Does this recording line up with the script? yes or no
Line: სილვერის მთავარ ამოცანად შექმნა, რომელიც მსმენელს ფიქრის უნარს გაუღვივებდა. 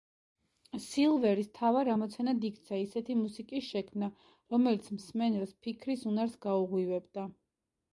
no